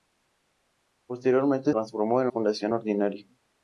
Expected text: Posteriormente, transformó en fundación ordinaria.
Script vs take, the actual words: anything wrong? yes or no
no